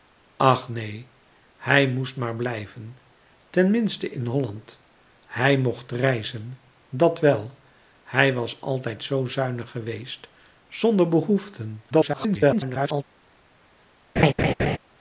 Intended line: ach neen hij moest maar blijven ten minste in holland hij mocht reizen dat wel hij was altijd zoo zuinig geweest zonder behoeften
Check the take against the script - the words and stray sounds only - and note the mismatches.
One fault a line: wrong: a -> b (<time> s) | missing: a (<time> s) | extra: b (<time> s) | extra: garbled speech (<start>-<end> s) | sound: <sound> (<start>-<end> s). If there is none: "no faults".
extra: garbled speech (11.9-13.0 s)
sound: laugh (14.2-14.8 s)